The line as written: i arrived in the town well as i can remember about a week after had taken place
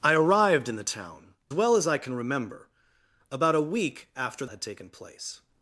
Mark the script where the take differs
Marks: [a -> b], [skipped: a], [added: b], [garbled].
i arrived in the town well as i can remember about a week after had taken place